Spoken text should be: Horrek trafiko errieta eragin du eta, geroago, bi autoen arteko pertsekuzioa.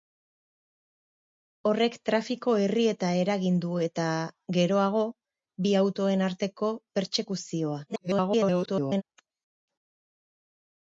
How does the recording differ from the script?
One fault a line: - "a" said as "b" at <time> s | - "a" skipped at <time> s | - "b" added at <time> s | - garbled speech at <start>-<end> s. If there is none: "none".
- garbled speech at 7.9-9.0 s